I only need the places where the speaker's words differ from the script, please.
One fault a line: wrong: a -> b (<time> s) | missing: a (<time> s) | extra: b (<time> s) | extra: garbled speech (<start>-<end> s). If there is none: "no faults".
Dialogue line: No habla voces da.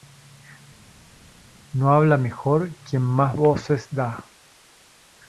extra: mejor quien más (2.2 s)